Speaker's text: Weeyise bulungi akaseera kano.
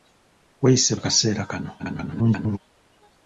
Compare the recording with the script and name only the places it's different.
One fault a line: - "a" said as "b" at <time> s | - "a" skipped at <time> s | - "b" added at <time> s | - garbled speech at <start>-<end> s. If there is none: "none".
- "bulungi" skipped at 0.9 s
- garbled speech at 1.8-2.6 s